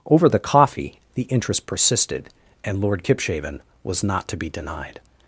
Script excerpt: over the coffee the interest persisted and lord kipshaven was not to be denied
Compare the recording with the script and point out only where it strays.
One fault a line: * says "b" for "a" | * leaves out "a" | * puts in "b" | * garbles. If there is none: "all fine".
all fine